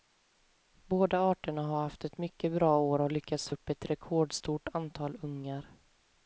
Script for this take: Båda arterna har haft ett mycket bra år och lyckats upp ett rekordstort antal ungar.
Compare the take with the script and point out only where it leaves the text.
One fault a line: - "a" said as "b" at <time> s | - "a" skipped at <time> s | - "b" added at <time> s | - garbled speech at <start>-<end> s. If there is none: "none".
none